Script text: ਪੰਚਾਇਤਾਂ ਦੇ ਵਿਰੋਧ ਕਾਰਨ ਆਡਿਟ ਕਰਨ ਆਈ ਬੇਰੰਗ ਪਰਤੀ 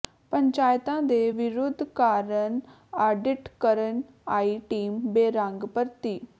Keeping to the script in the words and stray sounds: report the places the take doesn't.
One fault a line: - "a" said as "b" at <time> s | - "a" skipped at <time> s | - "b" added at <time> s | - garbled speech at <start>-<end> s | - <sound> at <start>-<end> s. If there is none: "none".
- "ਟੀਮ" added at 4.7 s